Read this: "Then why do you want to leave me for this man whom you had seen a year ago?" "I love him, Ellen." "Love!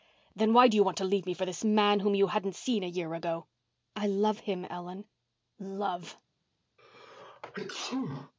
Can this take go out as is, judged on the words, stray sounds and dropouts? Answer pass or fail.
fail